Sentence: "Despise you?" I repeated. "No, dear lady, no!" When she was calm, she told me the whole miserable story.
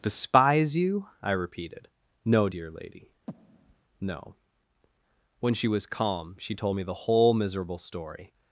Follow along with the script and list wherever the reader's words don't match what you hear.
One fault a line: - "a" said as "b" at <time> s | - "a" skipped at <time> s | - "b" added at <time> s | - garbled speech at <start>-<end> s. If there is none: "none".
none